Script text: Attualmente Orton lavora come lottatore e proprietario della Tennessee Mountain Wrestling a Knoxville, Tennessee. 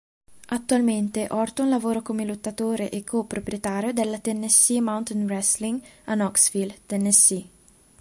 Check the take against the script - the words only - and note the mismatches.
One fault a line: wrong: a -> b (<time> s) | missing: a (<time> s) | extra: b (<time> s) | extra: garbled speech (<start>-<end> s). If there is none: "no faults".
extra: co (3.0 s)